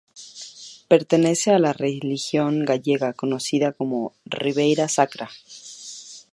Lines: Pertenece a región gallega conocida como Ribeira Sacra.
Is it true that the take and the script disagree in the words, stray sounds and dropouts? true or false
true